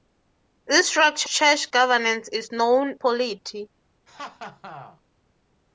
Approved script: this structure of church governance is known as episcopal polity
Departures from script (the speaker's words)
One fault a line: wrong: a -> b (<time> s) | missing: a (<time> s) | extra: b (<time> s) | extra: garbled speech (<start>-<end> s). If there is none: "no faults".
missing: of (1.3 s)
missing: as episcopal (3.0 s)